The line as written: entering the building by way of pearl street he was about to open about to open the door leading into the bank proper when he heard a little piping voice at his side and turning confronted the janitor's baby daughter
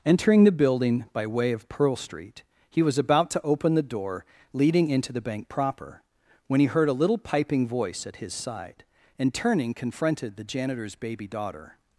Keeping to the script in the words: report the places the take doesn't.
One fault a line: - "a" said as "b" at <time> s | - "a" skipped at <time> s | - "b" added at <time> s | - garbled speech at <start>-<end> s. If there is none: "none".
- "about to open" skipped at 3.8 s